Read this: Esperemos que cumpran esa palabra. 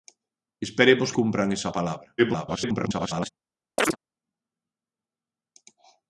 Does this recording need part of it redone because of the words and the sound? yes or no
yes